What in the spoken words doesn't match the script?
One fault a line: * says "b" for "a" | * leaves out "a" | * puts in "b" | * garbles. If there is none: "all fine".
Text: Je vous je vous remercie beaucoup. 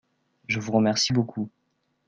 * leaves out "je vous"